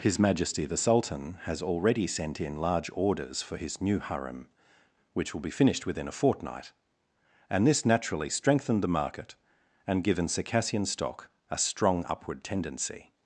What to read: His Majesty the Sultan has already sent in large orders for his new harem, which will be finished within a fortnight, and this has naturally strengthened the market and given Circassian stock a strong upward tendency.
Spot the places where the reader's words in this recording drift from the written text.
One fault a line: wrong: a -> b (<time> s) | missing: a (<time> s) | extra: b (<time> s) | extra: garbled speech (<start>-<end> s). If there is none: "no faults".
missing: has (7.8 s)